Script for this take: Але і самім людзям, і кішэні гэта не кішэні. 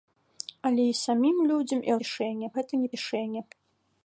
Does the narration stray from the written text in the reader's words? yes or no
no